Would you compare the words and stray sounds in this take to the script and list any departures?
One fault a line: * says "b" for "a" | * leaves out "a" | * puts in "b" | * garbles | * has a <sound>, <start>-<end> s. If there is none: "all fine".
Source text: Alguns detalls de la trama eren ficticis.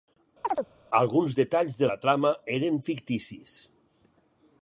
* has a chirp, 0.4-0.7 s